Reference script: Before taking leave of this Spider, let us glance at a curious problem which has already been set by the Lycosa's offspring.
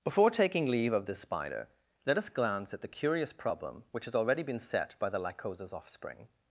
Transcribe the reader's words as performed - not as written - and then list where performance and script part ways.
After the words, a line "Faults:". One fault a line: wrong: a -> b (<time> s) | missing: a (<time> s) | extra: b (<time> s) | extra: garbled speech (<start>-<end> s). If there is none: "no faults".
Before taking leave of this Spider, let us glance at the curious problem which has already been set by the Lycosa's offspring.
Faults:
wrong: a -> the (2.8 s)